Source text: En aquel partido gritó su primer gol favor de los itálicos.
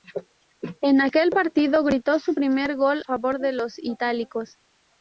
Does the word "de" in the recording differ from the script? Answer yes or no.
no